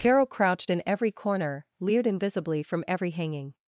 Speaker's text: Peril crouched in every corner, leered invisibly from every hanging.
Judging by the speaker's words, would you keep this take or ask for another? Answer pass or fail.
fail